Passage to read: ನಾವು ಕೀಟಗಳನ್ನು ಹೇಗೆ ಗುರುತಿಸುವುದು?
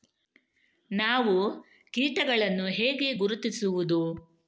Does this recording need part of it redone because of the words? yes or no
no